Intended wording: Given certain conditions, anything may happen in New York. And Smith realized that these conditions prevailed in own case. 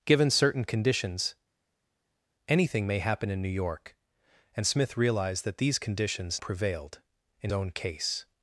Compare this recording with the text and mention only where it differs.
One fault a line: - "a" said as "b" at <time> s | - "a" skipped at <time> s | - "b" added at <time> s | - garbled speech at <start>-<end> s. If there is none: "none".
none